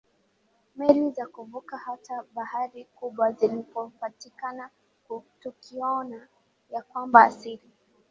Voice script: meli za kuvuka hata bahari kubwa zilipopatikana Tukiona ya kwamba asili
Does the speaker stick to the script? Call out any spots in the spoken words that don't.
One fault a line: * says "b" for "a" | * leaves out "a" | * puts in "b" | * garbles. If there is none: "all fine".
all fine